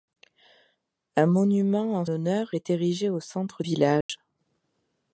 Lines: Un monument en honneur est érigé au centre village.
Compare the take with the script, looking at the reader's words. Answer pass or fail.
pass